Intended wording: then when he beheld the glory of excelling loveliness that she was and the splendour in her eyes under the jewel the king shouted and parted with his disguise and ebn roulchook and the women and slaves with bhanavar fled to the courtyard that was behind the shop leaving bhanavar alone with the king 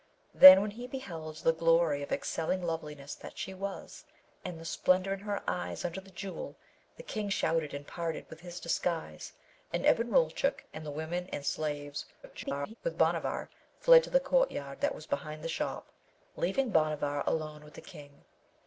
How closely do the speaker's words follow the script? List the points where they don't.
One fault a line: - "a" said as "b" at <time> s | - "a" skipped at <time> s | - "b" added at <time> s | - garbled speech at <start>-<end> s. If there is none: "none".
- garbled speech at 12.2-12.8 s